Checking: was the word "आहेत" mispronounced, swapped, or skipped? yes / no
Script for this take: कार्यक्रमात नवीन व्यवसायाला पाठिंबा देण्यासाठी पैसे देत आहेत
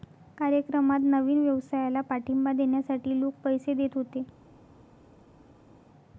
yes